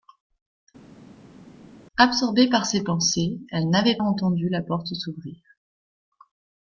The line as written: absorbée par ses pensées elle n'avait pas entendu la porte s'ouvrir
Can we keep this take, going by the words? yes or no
no